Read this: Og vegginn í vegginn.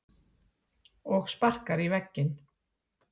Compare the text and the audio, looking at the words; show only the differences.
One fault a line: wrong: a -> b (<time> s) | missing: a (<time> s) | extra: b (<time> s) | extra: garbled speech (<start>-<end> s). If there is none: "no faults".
wrong: vegginn -> sparkar (1.3 s)